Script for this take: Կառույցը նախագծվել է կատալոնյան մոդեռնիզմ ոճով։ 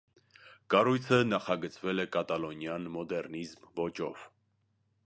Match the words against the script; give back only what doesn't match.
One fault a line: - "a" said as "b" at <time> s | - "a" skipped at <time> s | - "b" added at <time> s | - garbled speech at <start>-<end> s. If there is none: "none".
none